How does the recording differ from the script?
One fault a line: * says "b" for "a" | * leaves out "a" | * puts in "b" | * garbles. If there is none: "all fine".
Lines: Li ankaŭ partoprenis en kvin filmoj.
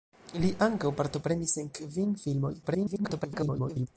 * garbles